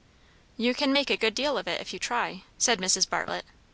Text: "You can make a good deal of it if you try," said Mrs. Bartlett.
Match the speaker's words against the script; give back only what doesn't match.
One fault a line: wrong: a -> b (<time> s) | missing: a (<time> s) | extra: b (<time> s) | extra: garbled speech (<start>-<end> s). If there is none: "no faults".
no faults